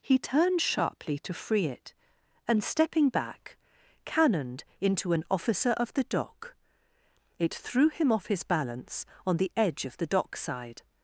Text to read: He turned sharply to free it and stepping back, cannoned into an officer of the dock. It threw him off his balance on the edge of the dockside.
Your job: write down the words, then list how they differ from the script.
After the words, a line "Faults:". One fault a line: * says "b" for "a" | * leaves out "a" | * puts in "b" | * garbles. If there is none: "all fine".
He turned sharply to free it and stepping back, cannoned into an officer of the dock. It threw him off his balance on the edge of the dockside.
Faults:
all fine